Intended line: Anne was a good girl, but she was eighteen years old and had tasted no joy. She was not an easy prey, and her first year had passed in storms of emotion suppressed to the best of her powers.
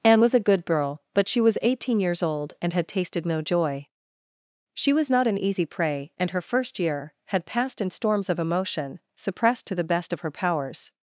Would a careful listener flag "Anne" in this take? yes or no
no